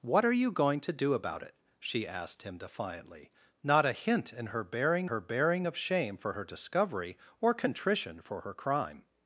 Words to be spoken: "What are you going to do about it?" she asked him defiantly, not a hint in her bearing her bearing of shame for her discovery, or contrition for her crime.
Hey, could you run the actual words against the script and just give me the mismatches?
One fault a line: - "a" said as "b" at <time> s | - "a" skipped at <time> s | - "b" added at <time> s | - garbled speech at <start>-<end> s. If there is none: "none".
none